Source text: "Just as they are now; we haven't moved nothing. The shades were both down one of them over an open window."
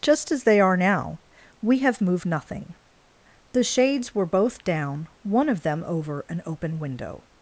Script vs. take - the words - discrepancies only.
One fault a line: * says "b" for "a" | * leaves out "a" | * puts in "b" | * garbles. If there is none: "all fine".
* says "have" for "haven't"